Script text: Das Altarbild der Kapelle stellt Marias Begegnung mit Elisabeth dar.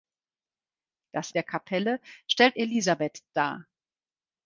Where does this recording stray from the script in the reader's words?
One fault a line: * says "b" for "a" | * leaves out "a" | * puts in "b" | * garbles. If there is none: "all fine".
* leaves out "Altarbild"
* leaves out "Marias Begegnung mit"